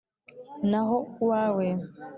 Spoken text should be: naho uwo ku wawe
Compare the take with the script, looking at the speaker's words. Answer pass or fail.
fail